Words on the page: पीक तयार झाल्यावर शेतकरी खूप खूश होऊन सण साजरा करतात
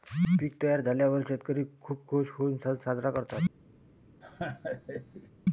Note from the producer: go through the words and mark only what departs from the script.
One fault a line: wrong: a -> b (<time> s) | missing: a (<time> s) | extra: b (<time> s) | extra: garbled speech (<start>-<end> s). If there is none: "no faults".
no faults